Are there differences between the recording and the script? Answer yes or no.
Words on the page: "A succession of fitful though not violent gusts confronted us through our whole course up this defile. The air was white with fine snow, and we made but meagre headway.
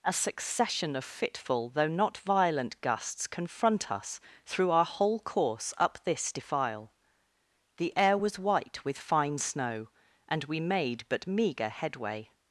yes